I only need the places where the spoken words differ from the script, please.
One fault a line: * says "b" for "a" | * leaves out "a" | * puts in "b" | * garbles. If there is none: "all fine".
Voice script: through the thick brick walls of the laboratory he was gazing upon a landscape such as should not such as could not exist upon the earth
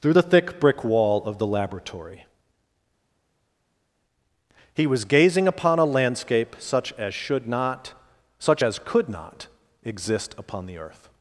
* says "wall" for "walls"